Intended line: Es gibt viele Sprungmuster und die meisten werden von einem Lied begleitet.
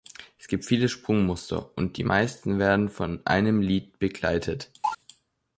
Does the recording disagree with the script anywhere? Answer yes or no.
no